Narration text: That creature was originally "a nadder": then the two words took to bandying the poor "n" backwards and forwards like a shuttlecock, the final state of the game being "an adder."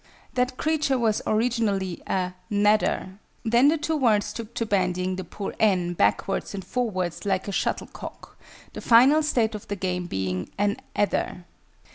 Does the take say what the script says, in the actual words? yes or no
yes